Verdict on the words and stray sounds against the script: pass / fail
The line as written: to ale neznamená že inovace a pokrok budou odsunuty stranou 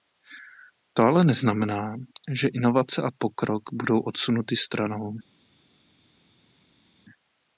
pass